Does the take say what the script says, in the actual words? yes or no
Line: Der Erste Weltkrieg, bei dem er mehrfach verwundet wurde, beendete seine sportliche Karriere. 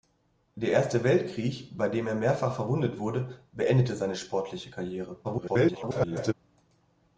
no